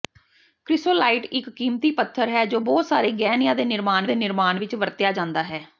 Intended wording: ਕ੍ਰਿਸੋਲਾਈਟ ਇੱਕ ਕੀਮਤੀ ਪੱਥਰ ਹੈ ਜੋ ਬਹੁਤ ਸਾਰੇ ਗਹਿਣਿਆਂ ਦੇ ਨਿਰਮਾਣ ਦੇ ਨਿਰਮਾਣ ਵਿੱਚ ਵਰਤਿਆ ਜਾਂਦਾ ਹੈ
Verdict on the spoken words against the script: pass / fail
pass